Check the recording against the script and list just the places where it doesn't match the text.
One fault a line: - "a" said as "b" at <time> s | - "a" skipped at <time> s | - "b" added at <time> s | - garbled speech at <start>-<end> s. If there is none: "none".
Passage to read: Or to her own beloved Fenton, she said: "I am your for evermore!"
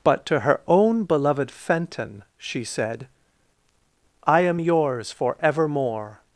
- "Or" said as "But" at 0.0 s
- "your" said as "yours" at 4.6 s